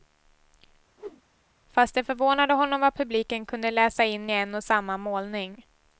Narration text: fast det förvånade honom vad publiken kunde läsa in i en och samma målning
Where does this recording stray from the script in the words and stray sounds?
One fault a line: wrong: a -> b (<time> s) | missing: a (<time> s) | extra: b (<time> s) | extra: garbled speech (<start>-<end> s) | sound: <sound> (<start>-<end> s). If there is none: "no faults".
sound: whoosh (1.0-1.2 s)